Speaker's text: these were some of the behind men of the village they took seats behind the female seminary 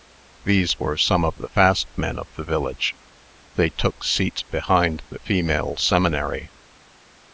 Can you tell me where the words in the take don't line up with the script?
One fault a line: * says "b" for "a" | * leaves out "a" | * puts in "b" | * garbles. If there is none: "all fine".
* says "fast" for "behind"